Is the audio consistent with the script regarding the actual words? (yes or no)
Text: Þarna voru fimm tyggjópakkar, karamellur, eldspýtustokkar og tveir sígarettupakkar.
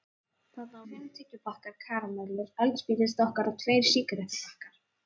no